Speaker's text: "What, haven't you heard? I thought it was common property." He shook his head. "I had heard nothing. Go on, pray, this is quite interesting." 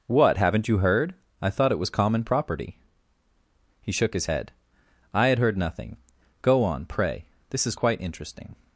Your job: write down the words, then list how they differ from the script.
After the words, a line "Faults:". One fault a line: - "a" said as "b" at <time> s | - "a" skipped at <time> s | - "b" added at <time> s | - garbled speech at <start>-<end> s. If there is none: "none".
"What, haven't you heard? I thought it was common property." He shook his head. "I had heard nothing. Go on, pray, this is quite interesting."
Faults:
none